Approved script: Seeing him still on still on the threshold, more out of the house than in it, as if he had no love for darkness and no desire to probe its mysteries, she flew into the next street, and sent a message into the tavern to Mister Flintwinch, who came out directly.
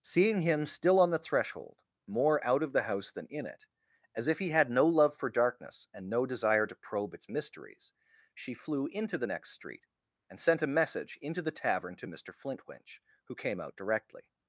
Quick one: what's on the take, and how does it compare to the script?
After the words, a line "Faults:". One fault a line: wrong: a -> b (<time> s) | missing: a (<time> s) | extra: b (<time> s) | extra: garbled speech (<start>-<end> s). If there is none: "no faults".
Seeing him still on the threshold, more out of the house than in it, as if he had no love for darkness and no desire to probe its mysteries, she flew into the next street, and sent a message into the tavern to Mister Flintwinch, who came out directly.
Faults:
missing: still on (1.1 s)